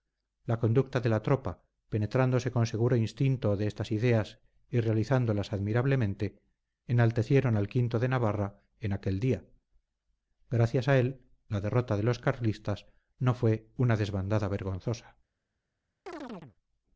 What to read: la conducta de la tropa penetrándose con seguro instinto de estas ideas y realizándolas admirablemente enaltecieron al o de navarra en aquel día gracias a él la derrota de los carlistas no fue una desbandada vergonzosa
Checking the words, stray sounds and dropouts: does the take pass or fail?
fail